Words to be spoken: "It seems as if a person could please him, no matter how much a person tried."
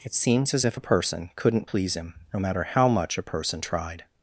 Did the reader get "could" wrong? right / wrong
wrong